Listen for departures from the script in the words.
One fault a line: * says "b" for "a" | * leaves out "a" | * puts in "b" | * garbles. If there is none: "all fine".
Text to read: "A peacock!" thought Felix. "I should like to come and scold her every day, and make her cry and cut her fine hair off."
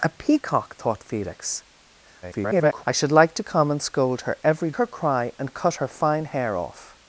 * garbles
* leaves out "day and make"